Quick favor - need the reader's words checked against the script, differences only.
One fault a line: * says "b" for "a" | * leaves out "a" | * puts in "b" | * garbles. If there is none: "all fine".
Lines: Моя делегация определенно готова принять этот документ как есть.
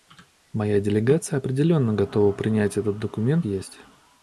* leaves out "как"